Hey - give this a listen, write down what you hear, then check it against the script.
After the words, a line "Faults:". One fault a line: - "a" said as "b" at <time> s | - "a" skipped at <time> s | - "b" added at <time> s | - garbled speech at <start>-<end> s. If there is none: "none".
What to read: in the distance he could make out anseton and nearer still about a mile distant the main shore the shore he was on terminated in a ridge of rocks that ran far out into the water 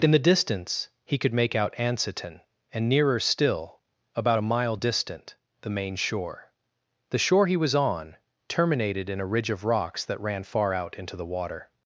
in the distance he could make out anseton and nearer still about a mile distant the main shore the shore he was on terminated in a ridge of rocks that ran far out into the water
Faults:
none